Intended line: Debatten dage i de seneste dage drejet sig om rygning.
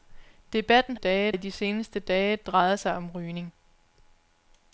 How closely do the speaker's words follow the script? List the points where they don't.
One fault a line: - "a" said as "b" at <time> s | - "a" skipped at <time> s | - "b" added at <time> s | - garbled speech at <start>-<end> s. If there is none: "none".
none